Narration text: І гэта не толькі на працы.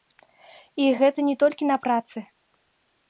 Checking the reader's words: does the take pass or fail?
pass